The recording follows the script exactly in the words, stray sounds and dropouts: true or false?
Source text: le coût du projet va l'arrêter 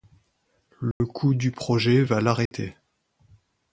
false